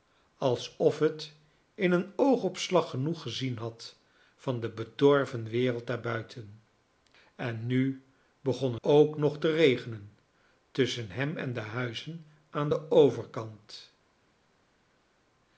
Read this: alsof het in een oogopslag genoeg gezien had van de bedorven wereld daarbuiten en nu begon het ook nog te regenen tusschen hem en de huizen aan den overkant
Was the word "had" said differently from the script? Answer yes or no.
no